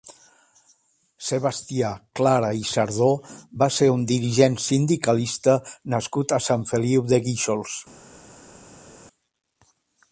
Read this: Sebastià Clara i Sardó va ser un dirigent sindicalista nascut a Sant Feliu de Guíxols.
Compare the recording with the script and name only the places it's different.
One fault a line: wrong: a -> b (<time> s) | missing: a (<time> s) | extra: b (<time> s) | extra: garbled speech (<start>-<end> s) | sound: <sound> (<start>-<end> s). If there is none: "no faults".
no faults